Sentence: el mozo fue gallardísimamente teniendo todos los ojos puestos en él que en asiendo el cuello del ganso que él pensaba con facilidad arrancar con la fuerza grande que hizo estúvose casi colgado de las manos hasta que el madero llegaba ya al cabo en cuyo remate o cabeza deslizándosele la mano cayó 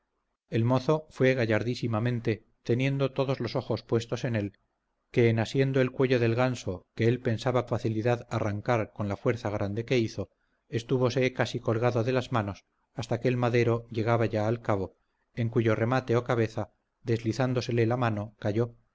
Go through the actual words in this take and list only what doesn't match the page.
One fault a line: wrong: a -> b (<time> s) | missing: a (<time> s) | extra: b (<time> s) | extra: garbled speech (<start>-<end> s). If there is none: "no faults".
missing: con (7.7 s)